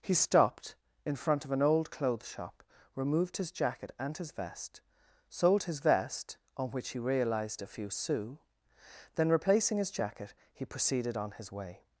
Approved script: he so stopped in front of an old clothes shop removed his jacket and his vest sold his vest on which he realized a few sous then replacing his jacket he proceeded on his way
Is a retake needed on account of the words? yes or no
yes